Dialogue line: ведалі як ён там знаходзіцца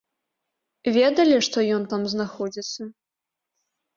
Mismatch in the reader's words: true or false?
true